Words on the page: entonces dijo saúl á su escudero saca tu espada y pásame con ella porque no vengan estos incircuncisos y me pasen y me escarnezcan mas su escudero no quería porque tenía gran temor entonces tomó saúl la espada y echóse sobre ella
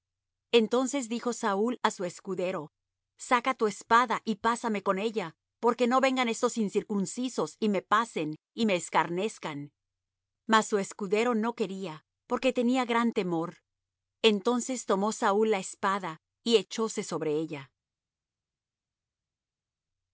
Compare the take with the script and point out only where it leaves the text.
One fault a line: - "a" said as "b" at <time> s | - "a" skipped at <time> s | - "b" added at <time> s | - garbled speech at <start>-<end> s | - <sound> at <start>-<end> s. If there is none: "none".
none